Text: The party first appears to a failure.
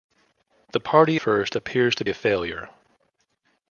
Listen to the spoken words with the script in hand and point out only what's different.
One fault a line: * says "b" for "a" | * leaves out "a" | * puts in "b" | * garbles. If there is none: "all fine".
all fine